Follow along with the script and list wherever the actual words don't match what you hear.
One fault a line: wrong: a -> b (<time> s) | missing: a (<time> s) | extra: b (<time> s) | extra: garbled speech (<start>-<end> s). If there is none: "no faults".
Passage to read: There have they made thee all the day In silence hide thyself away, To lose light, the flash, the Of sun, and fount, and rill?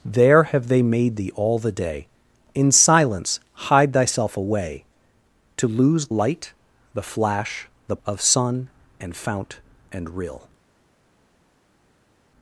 no faults